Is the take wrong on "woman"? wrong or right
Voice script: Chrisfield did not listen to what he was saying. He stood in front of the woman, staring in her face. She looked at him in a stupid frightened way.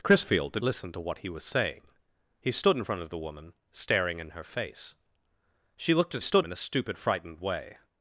right